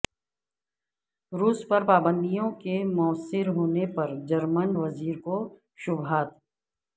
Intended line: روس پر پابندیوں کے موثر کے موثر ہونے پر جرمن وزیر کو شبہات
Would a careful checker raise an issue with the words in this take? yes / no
yes